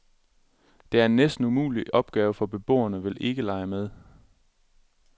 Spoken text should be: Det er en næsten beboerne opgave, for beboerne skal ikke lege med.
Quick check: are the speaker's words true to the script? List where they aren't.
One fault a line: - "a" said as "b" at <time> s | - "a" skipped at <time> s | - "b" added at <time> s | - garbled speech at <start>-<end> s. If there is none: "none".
- "beboerne" said as "umulig" at 1.4 s
- "skal" said as "vil" at 3.0 s